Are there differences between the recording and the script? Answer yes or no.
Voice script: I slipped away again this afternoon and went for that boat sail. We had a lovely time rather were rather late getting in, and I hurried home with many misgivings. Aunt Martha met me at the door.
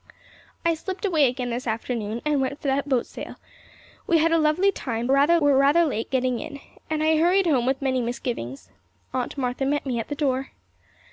no